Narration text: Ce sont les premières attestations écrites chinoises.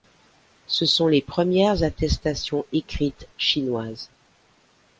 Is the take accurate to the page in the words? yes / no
yes